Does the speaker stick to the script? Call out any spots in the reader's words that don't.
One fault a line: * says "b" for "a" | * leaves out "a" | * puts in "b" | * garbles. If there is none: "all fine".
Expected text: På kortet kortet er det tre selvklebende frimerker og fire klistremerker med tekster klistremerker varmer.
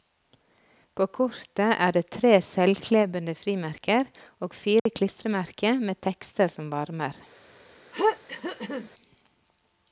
* leaves out "kortet"
* says "som" for "klistremerker"